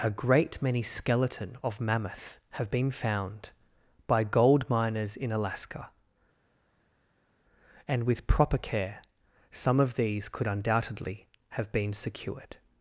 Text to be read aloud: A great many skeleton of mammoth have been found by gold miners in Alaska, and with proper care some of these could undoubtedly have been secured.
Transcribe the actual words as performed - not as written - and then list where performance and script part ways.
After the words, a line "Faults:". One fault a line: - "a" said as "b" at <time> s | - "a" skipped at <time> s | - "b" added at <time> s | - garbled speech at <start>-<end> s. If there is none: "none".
A great many skeleton of mammoth have been found by gold miners in Alaska, and with proper care some of these could undoubtedly have been secured.
Faults:
none